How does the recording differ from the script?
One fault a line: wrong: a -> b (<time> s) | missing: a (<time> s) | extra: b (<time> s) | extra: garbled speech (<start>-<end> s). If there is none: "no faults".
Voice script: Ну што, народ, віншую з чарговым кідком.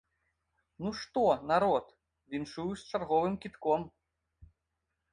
no faults